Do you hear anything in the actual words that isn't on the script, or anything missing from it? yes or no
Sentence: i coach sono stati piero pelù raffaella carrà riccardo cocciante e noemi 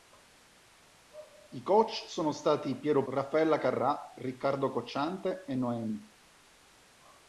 yes